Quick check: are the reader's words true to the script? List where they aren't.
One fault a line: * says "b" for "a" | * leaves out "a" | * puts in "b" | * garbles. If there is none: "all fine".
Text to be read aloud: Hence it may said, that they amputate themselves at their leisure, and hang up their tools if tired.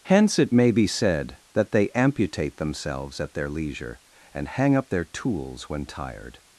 * puts in "be"
* says "when" for "if"